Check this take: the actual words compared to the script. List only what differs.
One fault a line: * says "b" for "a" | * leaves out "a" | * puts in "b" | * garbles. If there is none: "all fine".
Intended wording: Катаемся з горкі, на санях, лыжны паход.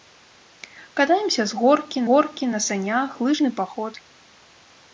* puts in "горкі"